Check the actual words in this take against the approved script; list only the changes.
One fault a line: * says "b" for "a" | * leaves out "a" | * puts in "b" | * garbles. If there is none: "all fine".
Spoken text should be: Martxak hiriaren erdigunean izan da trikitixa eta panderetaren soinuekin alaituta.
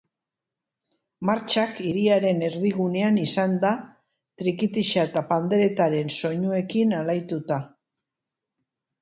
all fine